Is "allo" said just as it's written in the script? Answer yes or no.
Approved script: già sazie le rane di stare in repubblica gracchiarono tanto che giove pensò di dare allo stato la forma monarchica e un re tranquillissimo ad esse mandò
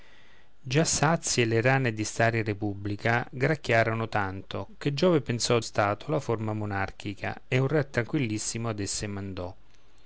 no